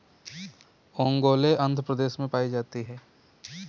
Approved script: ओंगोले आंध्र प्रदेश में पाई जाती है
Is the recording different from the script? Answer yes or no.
no